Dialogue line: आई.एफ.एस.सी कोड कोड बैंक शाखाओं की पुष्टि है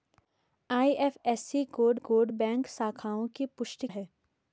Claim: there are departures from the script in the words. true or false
false